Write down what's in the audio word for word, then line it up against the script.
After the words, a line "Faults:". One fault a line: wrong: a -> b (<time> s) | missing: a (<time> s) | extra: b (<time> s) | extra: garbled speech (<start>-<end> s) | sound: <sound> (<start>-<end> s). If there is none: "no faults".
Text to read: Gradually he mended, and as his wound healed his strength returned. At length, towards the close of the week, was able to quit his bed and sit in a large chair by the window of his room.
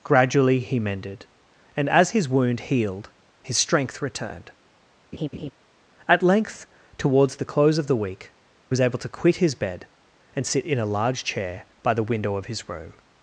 Gradually he mended, and as his wound healed his strength returned. At length, towards the close of the week, was able to quit his bed and sit in a large chair by the window of his room.
Faults:
sound: laugh (5.1-5.5 s)